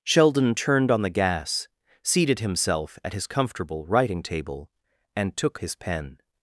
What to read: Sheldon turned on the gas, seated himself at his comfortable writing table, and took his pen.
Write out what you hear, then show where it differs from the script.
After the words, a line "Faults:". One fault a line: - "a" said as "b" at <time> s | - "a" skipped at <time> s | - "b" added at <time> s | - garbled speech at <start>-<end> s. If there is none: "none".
Sheldon turned on the gas, seated himself at his comfortable writing table, and took his pen.
Faults:
none